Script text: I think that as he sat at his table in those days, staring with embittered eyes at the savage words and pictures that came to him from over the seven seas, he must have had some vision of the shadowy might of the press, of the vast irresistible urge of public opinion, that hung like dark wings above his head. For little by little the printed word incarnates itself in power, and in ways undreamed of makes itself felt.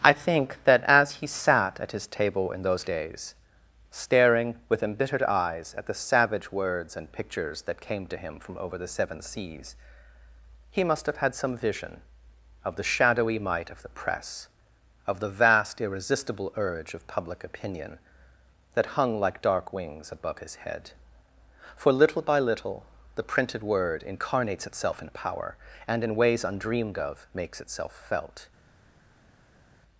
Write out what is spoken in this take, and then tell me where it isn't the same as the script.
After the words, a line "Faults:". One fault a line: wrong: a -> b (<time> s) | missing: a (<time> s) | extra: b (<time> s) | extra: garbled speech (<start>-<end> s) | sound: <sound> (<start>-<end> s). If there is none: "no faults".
I think that as he sat at his table in those days, staring with embittered eyes at the savage words and pictures that came to him from over the seven seas, he must have had some vision of the shadowy might of the press, of the vast irresistible urge of public opinion, that hung like dark wings above his head. For little by little the printed word incarnates itself in power, and in ways undreamed of makes itself felt.
Faults:
no faults